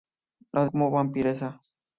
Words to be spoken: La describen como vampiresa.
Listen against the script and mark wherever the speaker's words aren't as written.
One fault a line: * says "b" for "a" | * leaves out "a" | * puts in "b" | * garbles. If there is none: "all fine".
* leaves out "describen"